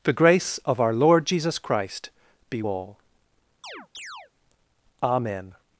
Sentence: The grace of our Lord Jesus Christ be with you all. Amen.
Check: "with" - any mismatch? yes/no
yes